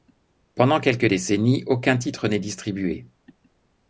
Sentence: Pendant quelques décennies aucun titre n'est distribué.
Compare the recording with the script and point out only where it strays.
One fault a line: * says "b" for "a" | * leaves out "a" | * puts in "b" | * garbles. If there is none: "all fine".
all fine